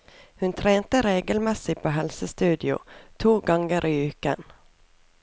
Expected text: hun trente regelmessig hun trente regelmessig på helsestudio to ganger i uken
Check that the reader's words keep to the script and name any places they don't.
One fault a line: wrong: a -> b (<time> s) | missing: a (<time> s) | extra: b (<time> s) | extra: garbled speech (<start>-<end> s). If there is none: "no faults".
missing: hun trente regelmessig (1.8 s)